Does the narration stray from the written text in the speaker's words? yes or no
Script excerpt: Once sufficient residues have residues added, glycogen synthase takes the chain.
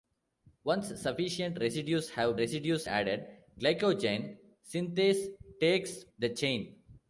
no